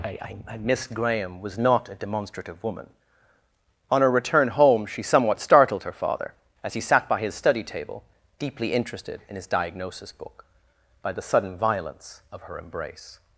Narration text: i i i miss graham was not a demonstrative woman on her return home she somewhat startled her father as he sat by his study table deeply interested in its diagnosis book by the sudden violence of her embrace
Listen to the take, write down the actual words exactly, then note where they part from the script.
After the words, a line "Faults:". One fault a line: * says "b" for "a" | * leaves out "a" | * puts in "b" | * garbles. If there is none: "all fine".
i i i miss graham was not a demonstrative woman on her return home she somewhat startled her father as he sat by his study table deeply interested in his diagnosis book by the sudden violence of her embrace
Faults:
* says "his" for "its"